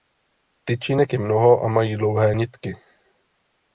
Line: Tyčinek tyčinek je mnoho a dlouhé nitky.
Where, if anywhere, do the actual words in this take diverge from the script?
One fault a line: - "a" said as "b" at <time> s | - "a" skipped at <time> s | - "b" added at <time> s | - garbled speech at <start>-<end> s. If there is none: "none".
- "tyčinek" skipped at 1.1 s
- "mají" added at 1.7 s